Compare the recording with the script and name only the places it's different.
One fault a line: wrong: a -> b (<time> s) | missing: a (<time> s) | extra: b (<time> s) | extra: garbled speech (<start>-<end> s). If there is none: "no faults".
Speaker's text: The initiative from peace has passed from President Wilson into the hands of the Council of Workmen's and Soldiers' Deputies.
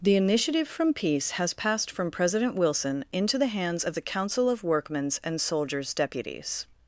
no faults